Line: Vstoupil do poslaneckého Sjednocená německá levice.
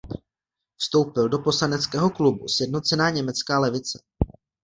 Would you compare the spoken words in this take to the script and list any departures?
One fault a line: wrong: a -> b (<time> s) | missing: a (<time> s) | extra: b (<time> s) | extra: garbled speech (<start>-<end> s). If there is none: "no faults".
extra: klubu (2.1 s)